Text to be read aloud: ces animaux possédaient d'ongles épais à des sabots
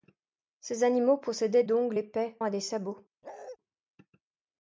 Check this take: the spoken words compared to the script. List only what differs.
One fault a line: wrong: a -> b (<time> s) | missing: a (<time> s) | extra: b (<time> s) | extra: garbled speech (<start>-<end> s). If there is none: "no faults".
no faults